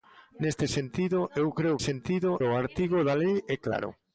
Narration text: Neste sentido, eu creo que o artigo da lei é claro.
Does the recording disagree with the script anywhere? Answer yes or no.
yes